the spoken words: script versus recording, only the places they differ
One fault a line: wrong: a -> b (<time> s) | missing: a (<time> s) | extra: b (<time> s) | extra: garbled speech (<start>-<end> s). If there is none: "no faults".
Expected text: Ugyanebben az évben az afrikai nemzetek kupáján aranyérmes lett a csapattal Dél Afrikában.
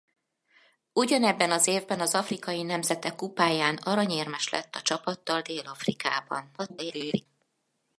extra: garbled speech (6.6-7.3 s)